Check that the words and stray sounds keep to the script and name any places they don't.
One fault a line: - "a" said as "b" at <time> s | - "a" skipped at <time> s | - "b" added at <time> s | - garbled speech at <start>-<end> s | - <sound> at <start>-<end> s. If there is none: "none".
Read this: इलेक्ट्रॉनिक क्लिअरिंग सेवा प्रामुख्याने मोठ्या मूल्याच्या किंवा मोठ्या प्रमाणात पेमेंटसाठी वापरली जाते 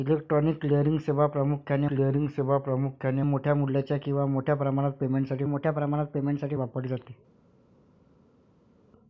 - "क्लिअरिंग सेवा प्रामुख्याने" added at 1.9 s
- "मोठ्या प्रमाणात पेमेंटसाठी" added at 5.4 s